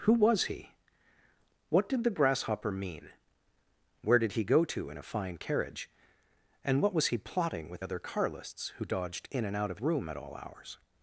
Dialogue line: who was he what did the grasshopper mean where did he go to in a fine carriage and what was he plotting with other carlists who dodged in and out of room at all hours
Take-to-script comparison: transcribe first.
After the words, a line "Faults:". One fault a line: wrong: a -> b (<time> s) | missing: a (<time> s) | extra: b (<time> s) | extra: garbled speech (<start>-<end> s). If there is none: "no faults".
who was he what did the grasshopper mean where did he go to in a fine carriage and what was he plotting with other carlists who dodged in and out of room at all hours
Faults:
no faults